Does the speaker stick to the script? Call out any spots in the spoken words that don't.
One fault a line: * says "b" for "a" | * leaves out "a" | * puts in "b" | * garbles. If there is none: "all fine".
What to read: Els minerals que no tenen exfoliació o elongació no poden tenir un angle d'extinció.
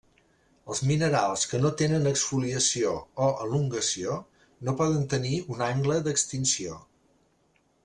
all fine